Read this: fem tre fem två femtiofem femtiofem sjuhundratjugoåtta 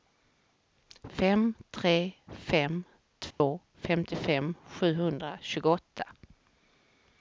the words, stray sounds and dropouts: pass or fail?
fail